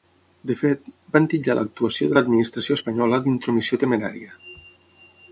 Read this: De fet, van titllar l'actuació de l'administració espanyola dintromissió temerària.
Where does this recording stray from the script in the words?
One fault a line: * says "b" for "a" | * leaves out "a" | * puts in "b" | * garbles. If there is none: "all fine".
all fine